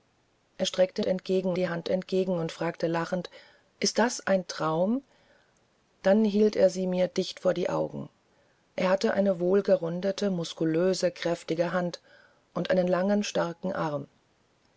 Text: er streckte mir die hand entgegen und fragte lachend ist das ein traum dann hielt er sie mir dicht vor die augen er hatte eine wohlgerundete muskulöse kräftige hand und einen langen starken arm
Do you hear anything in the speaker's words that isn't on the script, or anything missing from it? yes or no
yes